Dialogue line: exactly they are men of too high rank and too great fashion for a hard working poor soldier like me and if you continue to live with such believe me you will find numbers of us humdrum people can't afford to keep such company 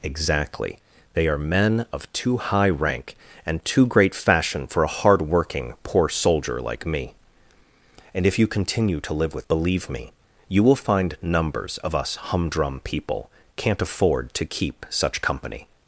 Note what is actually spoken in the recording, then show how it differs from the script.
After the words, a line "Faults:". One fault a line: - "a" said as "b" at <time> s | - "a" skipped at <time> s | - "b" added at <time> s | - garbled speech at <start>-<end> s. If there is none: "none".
exactly they are men of too high rank and too great fashion for a hard working poor soldier like me and if you continue to live with believe me you will find numbers of us humdrum people can't afford to keep such company
Faults:
- "such" skipped at 9.5 s